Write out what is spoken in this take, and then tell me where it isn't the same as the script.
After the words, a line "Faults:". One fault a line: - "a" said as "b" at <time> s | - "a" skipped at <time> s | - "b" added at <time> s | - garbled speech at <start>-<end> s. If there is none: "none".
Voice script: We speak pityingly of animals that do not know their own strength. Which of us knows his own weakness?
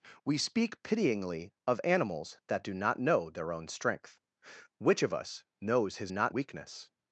We speak pityingly of animals that do not know their own strength. Which of us knows his not weakness?
Faults:
- "own" said as "not" at 6.1 s